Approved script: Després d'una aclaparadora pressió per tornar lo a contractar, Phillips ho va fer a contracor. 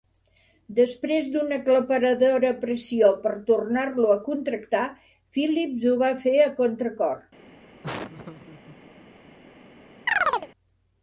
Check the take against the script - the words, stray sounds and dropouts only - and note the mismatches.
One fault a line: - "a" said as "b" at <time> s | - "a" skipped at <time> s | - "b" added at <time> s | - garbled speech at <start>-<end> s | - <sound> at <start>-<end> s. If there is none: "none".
- laugh at 7.8-8.8 s
- chirp at 10.1-10.5 s